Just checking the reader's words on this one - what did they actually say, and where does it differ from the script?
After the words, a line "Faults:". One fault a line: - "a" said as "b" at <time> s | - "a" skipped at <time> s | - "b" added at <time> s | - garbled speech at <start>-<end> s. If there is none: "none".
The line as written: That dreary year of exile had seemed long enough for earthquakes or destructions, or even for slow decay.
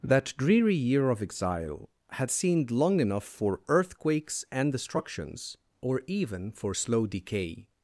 That dreary year of exile had seemed long enough for earthquakes and destructions, or even for slow decay.
Faults:
- "or" said as "and" at 4.5 s